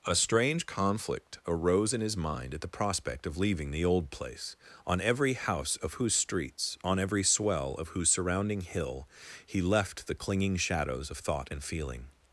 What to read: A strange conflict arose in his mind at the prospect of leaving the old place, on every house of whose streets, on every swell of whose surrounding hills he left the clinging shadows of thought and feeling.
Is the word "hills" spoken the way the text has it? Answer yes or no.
no